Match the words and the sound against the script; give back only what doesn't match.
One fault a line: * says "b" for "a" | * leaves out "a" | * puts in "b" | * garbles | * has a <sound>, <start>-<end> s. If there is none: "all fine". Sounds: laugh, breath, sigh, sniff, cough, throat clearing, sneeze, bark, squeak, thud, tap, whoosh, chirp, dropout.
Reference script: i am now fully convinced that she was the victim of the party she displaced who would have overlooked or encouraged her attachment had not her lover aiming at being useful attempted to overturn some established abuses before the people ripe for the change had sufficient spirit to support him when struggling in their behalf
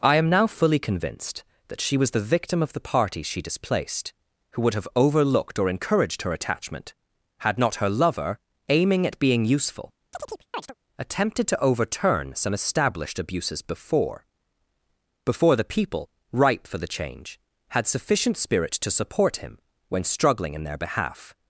* has a chirp, 10.1-10.7 s
* puts in "before"